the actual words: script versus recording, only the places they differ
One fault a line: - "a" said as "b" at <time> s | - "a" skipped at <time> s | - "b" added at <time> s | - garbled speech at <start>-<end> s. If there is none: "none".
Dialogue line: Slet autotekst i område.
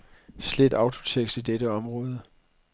- "dette" added at 1.4 s